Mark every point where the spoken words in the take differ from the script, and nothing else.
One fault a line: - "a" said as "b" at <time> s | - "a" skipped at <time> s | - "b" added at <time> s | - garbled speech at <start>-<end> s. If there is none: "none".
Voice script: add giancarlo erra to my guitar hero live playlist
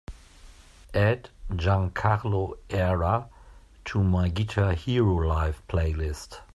none